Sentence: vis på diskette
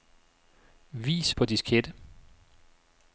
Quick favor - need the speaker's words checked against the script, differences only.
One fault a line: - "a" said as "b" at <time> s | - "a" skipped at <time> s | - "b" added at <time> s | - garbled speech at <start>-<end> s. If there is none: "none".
none